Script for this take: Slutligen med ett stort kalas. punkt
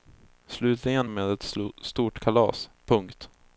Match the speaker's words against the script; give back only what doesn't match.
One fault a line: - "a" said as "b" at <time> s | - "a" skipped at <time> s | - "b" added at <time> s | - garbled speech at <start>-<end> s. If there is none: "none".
none